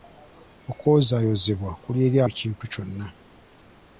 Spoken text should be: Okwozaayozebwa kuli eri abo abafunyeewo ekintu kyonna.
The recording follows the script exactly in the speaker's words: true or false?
false